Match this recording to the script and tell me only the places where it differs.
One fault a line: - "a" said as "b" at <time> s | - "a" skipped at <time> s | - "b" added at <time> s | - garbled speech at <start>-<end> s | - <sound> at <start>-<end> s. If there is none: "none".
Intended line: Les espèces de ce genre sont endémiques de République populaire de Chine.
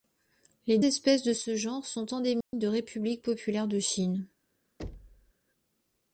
- dropout at 2.4-2.5 s
- thud at 4.8-5.3 s